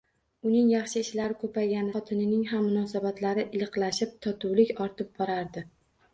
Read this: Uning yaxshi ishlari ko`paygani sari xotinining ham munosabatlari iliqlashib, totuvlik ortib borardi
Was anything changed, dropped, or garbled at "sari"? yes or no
yes